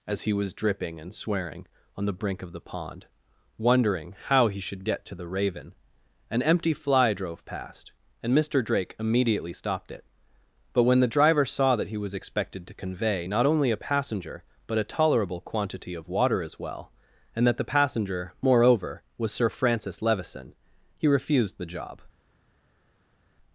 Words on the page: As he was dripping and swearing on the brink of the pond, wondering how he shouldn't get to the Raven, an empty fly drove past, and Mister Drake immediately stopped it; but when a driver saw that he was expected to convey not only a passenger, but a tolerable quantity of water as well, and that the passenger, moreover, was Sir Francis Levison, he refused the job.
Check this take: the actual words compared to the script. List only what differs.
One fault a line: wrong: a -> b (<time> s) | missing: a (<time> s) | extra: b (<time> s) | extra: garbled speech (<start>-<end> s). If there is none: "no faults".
wrong: shouldn't -> should (4.6 s)
wrong: a -> the (11.0 s)